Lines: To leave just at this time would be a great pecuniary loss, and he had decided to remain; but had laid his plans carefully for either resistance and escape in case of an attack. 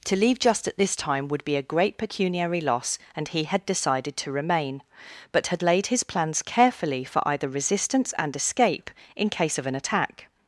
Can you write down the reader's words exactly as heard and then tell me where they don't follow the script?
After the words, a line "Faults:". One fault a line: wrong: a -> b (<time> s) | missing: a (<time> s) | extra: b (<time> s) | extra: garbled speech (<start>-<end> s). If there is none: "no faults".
To leave just at this time would be a great pecuniary loss, and he had decided to remain; but had laid his plans carefully for either resistance and escape in case of an attack.
Faults:
no faults